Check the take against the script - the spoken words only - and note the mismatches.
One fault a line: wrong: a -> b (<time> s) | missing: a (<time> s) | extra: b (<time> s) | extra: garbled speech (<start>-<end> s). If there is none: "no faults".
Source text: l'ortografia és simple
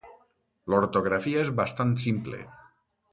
extra: bastant (1.6 s)